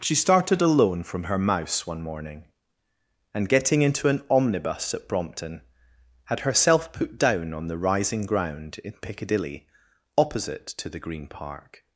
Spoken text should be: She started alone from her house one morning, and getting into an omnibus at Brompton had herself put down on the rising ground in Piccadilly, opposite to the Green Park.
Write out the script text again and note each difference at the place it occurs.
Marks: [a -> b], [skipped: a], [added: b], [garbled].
She started alone from her [house -> mouse] one morning, and getting into an omnibus at Brompton had herself put down on the rising ground in Piccadilly, opposite to the Green Park.